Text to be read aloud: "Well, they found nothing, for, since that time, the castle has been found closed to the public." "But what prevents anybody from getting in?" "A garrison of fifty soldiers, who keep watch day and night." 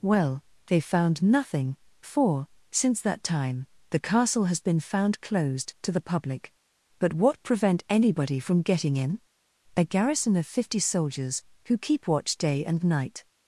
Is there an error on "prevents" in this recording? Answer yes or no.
yes